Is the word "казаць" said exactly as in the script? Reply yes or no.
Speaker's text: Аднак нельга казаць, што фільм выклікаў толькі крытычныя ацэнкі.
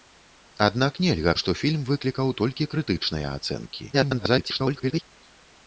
no